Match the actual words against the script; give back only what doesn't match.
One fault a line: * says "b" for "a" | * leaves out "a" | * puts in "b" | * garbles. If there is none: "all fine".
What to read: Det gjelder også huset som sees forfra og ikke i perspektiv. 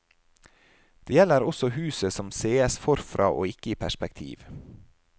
all fine